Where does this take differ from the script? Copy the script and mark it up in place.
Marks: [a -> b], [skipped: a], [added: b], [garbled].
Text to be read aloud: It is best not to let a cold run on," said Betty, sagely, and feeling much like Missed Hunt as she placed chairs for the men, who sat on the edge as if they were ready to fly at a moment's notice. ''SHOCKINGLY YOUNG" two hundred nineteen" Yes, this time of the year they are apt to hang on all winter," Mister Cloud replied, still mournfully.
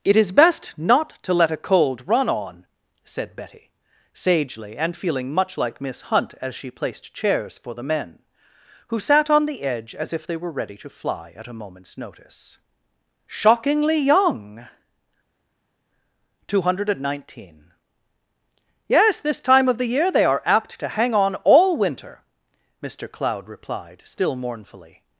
It is best not to let a cold run on," said Betty, sagely, and feeling much like [Missed -> Miss] Hunt as she placed chairs for the men, who sat on the edge as if they were ready to fly at a moment's notice. ''SHOCKINGLY YOUNG" two hundred nineteen" Yes, this time of the year they are apt to hang on all winter," Mister Cloud replied, still mournfully.